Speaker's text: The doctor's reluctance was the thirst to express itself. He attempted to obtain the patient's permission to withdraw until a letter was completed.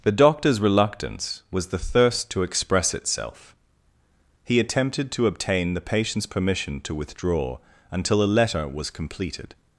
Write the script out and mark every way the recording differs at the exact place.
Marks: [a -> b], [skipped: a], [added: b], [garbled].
The doctor's reluctance was the thirst to express itself. He attempted to obtain the patient's permission to withdraw until a letter was completed.